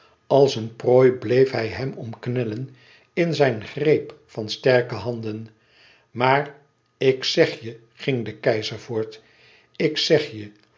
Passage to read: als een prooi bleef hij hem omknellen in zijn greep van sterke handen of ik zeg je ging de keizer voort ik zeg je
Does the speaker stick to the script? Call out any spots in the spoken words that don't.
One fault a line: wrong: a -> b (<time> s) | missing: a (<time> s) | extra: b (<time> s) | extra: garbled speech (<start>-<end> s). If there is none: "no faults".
wrong: of -> maar (6.1 s)